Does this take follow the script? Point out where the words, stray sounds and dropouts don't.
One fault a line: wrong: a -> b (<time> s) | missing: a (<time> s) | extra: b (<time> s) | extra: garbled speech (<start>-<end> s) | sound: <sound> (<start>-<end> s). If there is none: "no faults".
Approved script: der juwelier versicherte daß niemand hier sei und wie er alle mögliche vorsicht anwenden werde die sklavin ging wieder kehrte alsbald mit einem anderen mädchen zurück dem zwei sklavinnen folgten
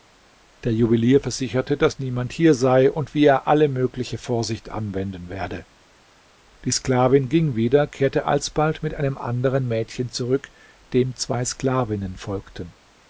no faults